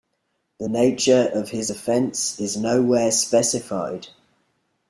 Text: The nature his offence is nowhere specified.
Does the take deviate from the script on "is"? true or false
false